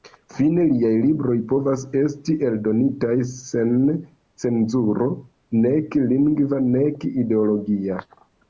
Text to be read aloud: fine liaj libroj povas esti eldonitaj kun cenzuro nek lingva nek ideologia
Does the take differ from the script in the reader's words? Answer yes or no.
yes